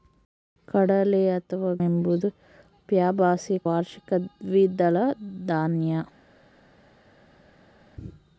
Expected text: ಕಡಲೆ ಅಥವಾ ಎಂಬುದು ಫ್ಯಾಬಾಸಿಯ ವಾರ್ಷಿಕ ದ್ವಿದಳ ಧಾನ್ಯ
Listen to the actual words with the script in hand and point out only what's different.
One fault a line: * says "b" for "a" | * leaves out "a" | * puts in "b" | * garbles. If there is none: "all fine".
all fine